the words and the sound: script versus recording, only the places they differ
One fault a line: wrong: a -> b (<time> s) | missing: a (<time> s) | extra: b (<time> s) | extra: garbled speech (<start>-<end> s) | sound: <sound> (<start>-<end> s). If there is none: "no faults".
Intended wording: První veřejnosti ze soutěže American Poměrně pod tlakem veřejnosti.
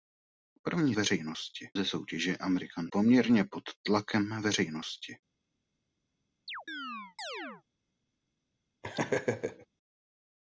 sound: chirp (6.5-7.6 s)
sound: laugh (8.8-9.7 s)